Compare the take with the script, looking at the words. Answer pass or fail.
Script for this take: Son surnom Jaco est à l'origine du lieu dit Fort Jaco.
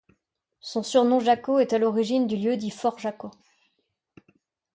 pass